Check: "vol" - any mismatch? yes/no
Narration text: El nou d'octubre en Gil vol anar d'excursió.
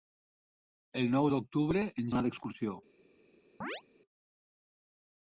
yes